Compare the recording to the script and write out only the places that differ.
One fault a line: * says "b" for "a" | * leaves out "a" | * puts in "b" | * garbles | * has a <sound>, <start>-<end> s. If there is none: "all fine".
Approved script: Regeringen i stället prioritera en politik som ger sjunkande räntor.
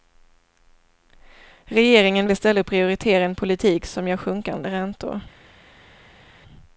all fine